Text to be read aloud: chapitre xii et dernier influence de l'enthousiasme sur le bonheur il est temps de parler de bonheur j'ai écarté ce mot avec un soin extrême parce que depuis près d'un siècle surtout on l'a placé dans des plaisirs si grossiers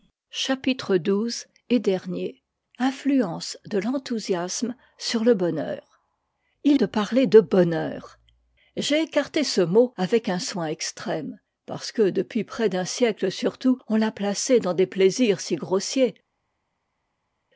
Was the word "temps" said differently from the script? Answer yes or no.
yes